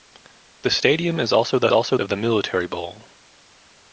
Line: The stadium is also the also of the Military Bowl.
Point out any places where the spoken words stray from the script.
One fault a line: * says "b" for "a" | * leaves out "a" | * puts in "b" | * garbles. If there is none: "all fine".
all fine